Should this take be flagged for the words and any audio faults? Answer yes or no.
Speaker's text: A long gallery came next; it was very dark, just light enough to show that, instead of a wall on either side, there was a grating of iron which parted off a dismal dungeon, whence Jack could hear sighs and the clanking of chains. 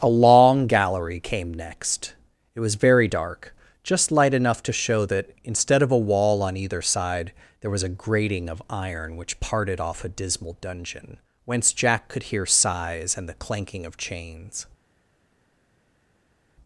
no